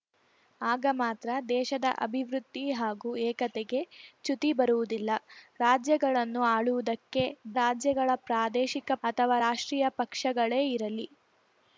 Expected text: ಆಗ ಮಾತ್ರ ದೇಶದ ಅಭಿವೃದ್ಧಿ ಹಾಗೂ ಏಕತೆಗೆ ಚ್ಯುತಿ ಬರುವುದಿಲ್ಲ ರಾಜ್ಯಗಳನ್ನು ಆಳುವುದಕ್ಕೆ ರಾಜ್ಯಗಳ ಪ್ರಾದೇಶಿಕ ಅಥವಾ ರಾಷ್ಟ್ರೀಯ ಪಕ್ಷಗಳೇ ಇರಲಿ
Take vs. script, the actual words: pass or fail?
pass